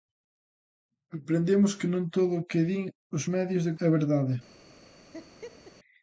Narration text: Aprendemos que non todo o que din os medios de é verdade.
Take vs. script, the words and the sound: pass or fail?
fail